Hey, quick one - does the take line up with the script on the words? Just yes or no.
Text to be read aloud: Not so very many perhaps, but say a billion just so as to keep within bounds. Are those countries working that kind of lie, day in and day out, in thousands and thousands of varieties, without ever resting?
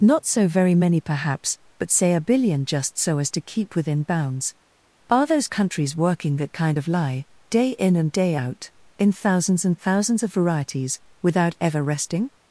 yes